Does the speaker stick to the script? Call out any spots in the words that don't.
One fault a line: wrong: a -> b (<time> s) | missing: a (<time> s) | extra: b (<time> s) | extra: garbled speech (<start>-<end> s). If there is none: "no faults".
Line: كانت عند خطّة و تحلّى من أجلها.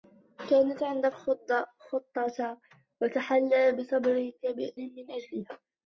no faults